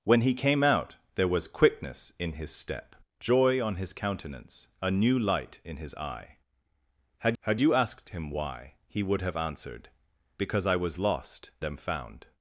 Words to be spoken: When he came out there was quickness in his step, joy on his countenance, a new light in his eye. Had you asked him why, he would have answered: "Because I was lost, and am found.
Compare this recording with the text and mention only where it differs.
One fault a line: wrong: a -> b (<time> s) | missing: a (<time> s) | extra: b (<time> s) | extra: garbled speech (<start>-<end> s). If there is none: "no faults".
extra: had (7.4 s)
missing: and (11.5 s)